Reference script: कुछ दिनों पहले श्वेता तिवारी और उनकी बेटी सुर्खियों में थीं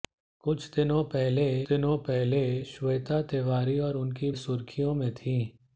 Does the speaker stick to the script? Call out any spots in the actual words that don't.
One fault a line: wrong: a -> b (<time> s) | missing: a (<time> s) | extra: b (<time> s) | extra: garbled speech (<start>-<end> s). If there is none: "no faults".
extra: दिनों पहले (1.7 s)
missing: बेटी (4.3 s)